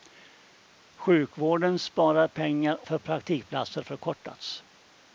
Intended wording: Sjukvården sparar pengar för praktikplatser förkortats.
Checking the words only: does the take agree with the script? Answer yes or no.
yes